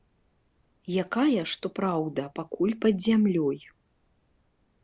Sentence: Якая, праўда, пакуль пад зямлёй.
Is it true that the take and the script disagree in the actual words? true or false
true